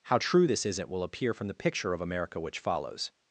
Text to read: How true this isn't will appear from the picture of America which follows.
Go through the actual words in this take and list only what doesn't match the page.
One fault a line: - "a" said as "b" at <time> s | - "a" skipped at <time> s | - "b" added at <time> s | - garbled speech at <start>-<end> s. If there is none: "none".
none